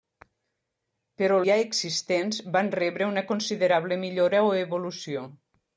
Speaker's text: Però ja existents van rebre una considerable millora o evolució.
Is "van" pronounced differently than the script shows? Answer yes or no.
no